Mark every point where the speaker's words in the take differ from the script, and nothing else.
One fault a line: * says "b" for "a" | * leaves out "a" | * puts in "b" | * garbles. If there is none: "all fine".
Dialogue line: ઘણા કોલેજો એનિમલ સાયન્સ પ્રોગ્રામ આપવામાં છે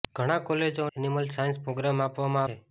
all fine